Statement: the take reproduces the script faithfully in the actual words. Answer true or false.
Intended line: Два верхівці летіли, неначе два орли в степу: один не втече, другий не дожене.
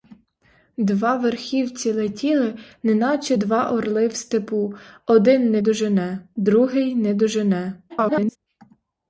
false